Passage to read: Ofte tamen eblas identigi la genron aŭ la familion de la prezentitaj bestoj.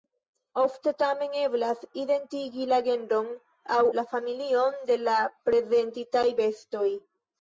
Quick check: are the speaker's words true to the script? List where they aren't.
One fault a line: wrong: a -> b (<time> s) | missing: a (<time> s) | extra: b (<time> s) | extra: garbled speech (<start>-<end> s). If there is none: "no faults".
no faults